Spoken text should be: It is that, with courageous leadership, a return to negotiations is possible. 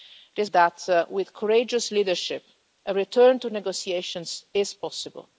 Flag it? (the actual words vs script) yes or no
no